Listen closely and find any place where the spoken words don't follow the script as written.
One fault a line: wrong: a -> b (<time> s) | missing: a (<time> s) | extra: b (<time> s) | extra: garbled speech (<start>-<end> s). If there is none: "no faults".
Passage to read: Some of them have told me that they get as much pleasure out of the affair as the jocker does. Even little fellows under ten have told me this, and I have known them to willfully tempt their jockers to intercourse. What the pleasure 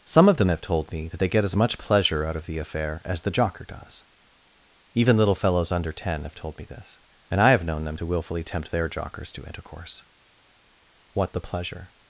no faults